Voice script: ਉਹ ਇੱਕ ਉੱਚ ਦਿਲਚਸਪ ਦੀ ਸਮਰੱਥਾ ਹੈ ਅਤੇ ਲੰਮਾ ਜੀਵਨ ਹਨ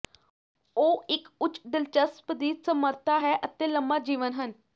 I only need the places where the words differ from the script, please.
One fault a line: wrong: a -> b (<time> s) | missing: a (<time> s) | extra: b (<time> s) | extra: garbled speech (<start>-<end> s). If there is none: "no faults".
no faults